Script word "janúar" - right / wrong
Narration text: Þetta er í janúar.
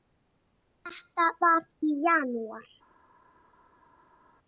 right